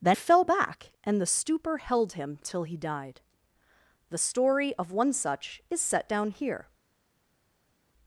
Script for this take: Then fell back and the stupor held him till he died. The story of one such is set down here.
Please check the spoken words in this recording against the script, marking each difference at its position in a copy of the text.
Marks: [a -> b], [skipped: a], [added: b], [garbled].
Then fell back and the stupor held him till he died. The story of one such is set down here.